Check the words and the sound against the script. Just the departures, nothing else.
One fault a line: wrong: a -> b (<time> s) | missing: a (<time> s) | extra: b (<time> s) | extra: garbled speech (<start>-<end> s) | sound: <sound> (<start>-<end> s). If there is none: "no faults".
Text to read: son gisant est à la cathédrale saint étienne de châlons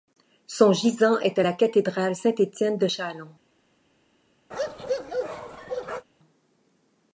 sound: bark (4.5-6.1 s)